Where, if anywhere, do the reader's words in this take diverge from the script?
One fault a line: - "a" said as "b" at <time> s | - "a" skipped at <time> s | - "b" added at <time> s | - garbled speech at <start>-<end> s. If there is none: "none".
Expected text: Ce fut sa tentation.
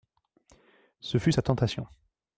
none